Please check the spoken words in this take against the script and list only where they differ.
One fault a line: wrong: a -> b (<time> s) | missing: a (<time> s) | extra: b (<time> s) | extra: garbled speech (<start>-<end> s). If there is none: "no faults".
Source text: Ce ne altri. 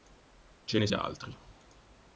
no faults